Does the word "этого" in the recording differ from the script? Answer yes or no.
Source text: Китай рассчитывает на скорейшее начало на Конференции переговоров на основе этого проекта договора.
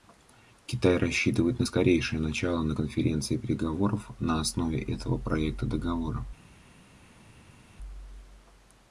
no